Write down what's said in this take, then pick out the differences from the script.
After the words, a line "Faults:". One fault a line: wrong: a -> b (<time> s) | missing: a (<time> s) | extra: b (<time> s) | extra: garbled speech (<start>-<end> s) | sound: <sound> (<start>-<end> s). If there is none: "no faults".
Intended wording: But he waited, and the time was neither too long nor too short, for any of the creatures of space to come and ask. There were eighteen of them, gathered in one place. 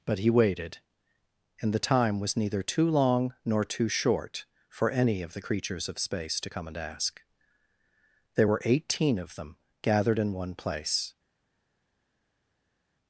But he waited, and the time was neither too long nor too short, for any of the creatures of space to come and ask. There were eighteen of them, gathered in one place.
Faults:
no faults